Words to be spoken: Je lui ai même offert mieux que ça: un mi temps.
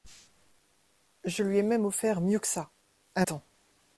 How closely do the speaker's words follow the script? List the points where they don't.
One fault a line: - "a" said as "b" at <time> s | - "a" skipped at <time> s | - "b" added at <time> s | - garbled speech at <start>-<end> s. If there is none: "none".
- "mi" skipped at 3.2 s